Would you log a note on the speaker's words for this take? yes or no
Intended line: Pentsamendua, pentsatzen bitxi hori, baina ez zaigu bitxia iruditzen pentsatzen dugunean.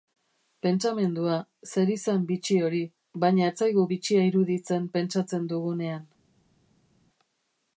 yes